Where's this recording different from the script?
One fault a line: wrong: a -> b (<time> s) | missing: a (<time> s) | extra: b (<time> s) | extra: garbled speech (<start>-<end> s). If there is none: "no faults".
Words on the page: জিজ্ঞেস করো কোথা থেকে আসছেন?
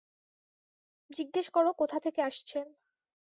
no faults